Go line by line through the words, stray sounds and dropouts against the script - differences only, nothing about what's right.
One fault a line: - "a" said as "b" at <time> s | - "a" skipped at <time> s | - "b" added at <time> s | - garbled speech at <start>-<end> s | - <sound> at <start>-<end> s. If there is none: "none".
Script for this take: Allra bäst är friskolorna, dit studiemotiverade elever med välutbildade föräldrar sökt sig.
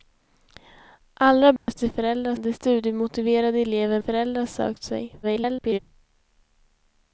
- dropout at 1.6-1.7 s
- "friskolorna" said as "föräldrar" at 1.9 s
- "med välutbildade" skipped at 4.0 s
- garbled speech at 5.2-5.8 s